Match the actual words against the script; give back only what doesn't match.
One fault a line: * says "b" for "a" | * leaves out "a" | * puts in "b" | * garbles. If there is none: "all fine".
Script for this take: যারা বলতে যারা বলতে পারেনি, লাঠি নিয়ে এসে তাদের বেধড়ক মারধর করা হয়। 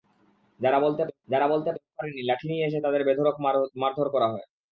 all fine